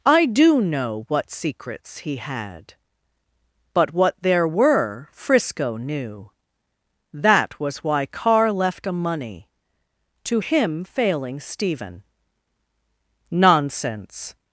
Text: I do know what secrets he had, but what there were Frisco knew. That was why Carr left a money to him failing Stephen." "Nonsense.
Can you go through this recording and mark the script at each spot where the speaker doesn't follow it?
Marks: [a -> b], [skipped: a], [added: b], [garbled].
I do know what secrets he had, but what there were Frisco knew. That was why Carr left a money to him failing Stephen." "Nonsense.